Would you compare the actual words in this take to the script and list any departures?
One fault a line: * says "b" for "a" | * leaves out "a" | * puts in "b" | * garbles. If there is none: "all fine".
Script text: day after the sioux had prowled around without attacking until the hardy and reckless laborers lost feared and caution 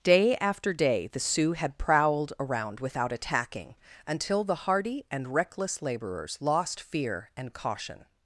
* puts in "day"
* says "fear" for "feared"